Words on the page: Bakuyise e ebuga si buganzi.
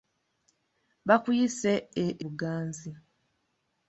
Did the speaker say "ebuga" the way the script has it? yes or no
no